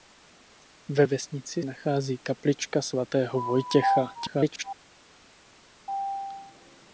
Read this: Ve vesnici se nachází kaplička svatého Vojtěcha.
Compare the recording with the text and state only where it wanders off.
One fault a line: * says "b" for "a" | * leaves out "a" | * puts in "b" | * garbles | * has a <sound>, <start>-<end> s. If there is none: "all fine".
* leaves out "se"
* garbles